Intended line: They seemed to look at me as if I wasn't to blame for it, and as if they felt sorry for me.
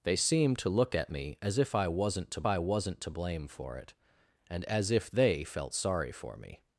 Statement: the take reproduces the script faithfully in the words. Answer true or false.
false